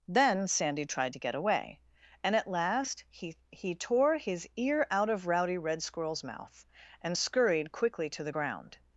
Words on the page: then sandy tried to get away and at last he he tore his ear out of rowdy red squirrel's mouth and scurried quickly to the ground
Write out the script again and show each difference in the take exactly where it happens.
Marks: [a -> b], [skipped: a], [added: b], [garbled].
then sandy tried to get away and at last he he tore his ear out of rowdy red squirrel's mouth and scurried quickly to the ground